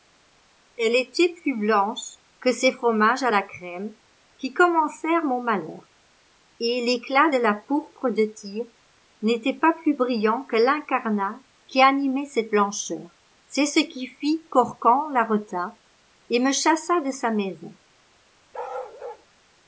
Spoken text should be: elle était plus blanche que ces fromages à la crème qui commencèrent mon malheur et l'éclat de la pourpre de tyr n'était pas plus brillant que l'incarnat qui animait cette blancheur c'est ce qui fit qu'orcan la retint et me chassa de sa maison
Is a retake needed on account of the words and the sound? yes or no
yes